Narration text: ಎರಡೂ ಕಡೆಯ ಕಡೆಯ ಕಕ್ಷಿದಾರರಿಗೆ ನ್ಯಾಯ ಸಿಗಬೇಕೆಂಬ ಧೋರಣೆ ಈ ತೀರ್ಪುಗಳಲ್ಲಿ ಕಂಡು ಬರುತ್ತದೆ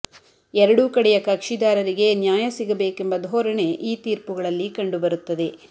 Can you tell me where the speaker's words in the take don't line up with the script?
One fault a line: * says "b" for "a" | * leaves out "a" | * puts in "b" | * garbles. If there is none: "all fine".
* leaves out "ಕಡೆಯ"